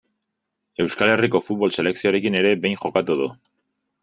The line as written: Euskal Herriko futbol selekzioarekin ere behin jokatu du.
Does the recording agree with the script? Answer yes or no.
yes